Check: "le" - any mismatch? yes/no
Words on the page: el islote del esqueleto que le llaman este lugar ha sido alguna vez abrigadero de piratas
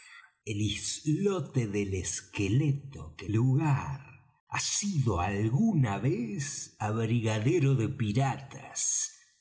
yes